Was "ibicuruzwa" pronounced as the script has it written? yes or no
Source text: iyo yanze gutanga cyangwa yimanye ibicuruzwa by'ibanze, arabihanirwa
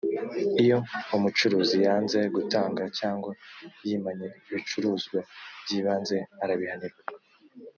yes